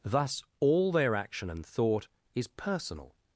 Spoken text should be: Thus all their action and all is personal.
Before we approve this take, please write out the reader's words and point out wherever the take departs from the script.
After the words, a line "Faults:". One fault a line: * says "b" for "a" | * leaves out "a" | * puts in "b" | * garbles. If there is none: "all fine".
Thus all their action and thought is personal.
Faults:
* says "thought" for "all"